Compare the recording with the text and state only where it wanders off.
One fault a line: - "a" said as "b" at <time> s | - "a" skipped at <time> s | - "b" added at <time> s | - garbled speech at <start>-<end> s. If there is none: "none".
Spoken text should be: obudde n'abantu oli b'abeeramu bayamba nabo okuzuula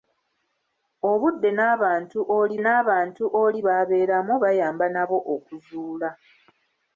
- "n'abantu oli" added at 2.6 s